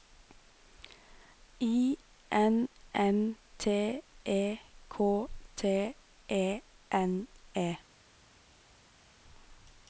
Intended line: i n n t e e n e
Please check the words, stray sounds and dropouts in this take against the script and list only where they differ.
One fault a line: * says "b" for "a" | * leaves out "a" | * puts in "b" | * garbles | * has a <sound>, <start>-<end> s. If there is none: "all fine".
* puts in "k t"